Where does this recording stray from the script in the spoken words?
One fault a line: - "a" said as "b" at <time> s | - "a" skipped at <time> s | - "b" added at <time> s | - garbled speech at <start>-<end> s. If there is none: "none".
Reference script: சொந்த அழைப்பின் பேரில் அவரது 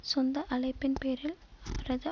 none